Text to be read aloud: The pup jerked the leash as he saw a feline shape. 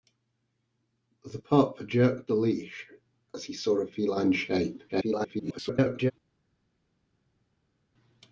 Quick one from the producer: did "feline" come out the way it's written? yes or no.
yes